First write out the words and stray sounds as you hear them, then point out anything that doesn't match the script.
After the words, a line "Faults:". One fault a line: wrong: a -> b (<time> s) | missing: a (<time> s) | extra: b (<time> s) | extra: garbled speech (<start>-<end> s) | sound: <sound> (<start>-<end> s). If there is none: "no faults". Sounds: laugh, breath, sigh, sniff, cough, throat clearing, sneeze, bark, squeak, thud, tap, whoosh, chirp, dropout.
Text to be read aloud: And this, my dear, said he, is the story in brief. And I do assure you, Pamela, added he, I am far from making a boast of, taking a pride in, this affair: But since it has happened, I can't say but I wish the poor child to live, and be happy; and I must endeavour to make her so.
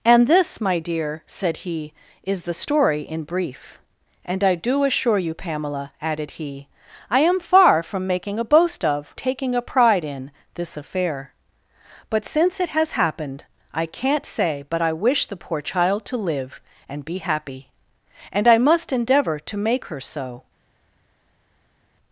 And this, my dear, said he, is the story in brief. And I do assure you, Pamela, added he, I am far from making a boast of, taking a pride in, this affair: But since it has happened, I can't say but I wish the poor child to live, and be happy; and I must endeavour to make her so.
Faults:
no faults